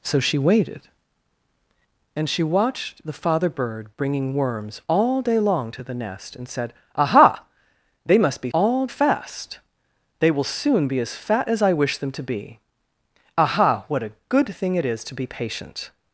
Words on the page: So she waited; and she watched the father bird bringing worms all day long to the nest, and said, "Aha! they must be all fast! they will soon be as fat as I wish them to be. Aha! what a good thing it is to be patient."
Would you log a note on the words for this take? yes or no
no